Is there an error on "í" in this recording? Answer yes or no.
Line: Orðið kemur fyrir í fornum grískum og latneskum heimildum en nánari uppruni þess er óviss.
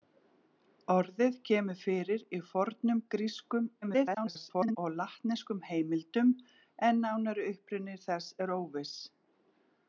no